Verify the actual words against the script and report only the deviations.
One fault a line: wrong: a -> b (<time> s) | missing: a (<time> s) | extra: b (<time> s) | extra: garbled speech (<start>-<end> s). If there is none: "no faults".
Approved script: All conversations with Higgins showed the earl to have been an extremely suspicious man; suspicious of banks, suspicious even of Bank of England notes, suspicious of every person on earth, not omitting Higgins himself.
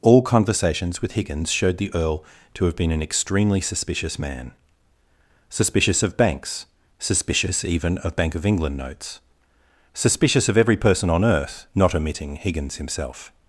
no faults